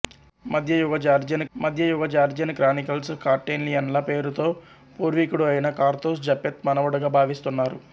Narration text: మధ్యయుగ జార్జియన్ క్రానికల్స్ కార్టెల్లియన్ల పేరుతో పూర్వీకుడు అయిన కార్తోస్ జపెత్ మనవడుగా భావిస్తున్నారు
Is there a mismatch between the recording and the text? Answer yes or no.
yes